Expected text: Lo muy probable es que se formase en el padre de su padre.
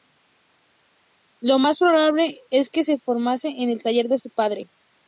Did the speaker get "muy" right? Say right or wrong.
wrong